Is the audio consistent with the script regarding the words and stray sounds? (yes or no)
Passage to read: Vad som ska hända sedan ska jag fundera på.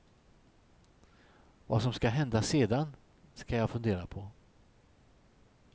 yes